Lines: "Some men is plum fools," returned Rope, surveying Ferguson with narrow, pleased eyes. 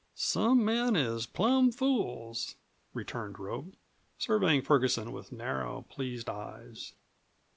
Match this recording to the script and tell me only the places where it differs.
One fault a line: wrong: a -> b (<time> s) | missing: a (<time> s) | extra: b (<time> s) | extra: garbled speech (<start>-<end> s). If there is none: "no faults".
no faults